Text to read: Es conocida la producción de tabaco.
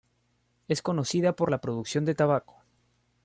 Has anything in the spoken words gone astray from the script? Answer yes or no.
yes